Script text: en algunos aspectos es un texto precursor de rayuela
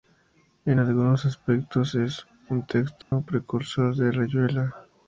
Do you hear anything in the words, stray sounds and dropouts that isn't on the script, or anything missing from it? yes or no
yes